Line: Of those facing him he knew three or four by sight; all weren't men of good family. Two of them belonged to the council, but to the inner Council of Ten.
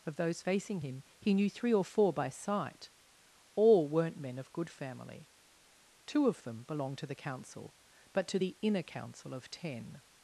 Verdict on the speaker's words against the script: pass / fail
pass